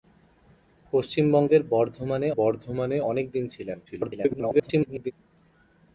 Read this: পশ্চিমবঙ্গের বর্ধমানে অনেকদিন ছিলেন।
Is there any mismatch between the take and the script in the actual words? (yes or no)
yes